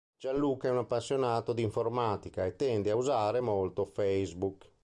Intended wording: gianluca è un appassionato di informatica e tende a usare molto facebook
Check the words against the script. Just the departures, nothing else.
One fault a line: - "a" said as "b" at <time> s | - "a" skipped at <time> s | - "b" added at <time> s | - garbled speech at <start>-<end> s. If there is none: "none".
none